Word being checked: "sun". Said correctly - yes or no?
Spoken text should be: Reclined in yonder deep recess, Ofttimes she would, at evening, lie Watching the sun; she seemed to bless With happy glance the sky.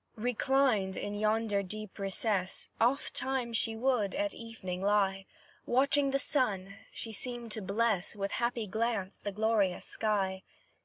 yes